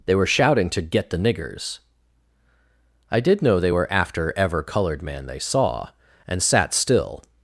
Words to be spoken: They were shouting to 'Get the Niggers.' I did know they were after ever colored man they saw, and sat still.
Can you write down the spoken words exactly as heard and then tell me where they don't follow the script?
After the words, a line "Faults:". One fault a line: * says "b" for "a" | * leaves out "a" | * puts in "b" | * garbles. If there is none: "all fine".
They were shouting to 'Get the Niggers.' I did know they were after ever colored man they saw, and sat still.
Faults:
all fine